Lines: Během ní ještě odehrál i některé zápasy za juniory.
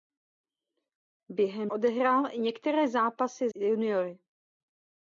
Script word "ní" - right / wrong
wrong